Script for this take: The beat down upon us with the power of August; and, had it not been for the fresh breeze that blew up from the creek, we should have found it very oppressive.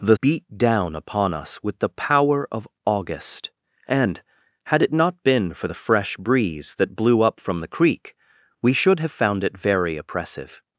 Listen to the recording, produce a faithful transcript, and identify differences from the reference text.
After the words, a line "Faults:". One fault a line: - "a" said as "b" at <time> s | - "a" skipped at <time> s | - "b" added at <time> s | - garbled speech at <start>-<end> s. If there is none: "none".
The beat down upon us with the power of August; and, had it not been for the fresh breeze that blew up from the creek, we should have found it very oppressive.
Faults:
none